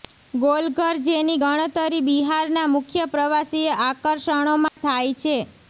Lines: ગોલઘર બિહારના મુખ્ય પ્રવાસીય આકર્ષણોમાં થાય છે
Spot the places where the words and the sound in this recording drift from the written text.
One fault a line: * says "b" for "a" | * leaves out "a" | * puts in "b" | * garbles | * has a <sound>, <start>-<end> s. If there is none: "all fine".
* puts in "જેની ગણતરી"
* has a dropout, 4.7-4.8 s